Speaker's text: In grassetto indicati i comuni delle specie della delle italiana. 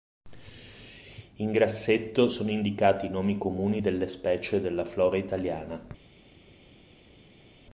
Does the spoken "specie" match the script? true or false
true